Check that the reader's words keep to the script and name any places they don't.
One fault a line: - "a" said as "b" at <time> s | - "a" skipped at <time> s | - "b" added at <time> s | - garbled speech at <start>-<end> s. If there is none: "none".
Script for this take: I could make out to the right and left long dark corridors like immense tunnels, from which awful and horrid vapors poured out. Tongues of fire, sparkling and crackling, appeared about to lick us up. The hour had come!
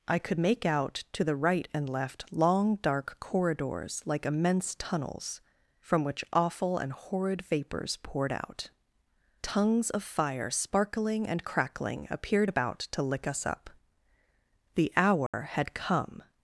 none